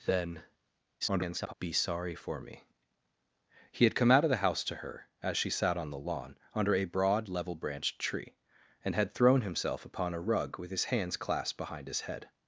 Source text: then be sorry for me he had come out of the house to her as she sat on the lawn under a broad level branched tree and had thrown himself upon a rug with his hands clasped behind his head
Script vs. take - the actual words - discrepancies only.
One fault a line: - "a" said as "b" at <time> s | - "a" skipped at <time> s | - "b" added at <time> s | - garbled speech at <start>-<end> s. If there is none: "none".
- garbled speech at 1.0-1.5 s